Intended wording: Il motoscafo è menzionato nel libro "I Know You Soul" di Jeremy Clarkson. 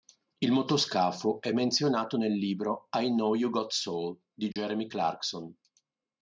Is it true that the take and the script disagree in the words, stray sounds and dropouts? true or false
true